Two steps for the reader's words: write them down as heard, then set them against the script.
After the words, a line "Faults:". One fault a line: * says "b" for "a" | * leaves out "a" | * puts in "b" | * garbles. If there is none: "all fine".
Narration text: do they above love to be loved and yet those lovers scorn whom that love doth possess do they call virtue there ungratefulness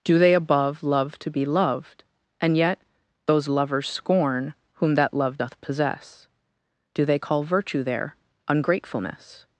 do they above love to be loved and yet those lovers scorn whom that love doth possess do they call virtue there ungratefulness
Faults:
all fine